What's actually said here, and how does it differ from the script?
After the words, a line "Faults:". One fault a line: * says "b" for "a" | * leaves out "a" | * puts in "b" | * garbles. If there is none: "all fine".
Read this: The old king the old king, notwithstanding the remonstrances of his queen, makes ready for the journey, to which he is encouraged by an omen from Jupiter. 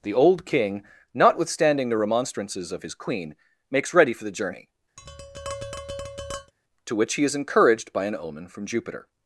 The old king, notwithstanding the remonstrances of his queen, makes ready for the journey, to which he is encouraged by an omen from Jupiter.
Faults:
* leaves out "the old king"